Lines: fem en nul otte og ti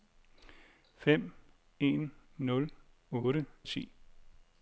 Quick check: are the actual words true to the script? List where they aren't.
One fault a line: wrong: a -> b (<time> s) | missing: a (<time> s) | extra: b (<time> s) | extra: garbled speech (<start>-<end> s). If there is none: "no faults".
no faults